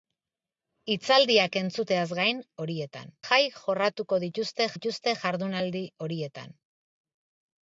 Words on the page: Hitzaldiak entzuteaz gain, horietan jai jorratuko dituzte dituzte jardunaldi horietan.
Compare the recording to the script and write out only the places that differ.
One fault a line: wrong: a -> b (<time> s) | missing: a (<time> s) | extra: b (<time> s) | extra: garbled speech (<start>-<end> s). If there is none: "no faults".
no faults